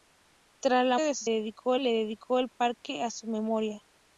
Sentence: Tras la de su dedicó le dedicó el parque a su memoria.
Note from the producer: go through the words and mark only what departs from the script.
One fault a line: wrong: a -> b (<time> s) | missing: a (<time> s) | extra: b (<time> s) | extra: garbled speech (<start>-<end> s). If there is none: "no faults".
no faults